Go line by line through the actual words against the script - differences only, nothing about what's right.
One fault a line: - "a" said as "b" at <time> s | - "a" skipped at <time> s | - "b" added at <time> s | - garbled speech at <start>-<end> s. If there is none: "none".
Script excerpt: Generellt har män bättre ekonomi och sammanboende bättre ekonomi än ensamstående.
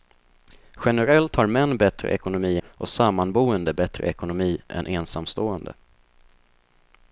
none